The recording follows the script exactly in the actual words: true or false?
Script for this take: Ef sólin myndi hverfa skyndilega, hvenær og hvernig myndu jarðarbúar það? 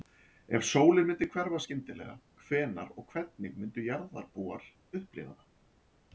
false